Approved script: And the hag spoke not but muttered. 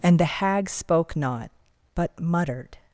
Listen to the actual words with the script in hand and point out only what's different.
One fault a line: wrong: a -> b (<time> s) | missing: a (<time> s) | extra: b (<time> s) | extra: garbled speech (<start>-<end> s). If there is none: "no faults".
no faults